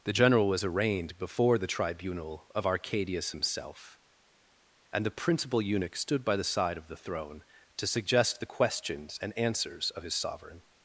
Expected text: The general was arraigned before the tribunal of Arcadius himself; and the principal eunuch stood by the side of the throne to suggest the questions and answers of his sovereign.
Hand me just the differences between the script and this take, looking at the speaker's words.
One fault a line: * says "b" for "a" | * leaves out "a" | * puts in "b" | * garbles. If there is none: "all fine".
all fine